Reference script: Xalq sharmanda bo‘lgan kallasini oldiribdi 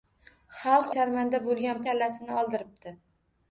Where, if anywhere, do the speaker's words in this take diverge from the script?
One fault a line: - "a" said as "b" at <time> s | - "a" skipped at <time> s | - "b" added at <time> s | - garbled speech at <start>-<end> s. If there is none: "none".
none